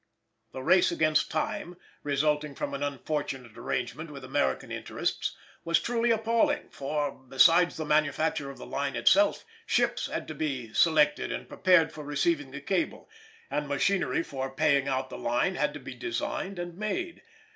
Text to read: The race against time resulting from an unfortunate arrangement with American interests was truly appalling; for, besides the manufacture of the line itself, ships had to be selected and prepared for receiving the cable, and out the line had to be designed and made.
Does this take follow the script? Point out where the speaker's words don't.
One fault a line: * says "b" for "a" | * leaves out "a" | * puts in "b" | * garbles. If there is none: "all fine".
* puts in "machinery for paying"